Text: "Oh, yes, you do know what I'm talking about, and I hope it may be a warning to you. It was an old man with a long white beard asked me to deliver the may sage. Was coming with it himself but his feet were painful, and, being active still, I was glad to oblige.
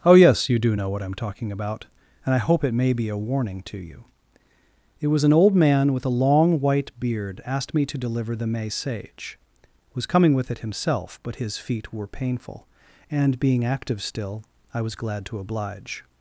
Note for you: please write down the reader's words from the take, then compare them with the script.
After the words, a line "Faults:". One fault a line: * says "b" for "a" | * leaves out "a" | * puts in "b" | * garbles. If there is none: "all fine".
"Oh, yes, you do know what I'm talking about, and I hope it may be a warning to you. It was an old man with a long white beard asked me to deliver the may sage. Was coming with it himself but his feet were painful, and, being active still, I was glad to oblige.
Faults:
all fine